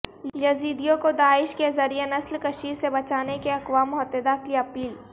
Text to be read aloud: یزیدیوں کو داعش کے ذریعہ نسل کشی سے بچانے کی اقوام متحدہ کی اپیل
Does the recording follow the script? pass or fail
pass